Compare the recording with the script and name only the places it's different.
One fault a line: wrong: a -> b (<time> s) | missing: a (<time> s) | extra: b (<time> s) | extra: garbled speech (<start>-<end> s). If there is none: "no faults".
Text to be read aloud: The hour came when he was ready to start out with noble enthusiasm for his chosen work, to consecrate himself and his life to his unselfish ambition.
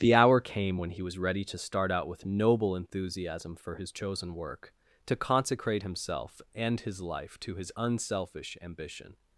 no faults